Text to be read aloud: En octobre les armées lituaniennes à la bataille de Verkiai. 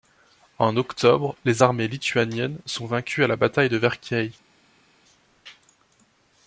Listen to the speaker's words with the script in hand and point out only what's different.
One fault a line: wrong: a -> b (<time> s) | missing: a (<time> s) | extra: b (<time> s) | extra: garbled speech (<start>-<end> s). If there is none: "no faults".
extra: sont vaincues (2.6 s)